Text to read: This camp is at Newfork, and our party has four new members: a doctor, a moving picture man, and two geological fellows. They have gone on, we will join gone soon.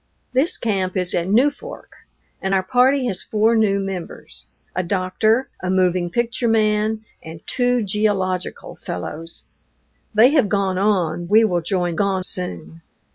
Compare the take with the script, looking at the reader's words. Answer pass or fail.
pass